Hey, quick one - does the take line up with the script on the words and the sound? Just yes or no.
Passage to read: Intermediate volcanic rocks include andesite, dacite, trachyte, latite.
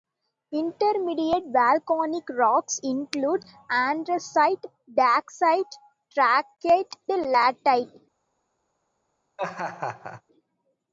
no